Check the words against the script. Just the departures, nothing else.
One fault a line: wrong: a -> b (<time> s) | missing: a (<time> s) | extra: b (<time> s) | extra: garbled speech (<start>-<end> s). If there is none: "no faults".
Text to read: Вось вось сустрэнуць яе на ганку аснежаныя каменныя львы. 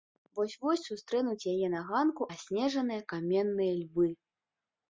no faults